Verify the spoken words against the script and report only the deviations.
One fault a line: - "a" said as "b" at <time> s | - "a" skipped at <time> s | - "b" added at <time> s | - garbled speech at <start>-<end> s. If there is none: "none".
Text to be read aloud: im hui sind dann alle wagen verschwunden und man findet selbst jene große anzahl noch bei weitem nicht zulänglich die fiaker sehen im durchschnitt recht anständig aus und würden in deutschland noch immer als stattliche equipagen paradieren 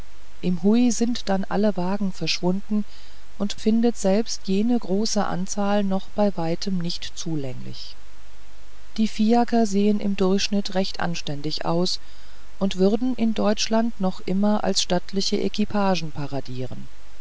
- "man" skipped at 3.6 s